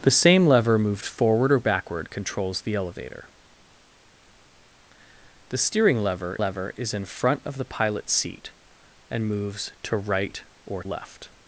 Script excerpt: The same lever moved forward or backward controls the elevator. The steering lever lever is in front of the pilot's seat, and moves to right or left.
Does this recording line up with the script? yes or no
yes